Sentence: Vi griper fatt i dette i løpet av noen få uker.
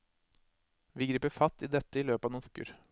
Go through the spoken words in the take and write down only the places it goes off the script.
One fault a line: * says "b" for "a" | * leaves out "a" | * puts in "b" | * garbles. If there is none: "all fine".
* leaves out "få"